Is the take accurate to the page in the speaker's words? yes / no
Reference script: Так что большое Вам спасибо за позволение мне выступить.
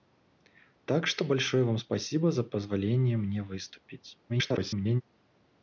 no